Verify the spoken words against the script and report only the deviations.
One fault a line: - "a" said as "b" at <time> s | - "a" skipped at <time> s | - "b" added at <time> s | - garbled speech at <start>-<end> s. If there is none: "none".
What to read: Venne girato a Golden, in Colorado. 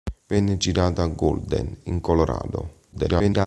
- garbled speech at 2.9-3.5 s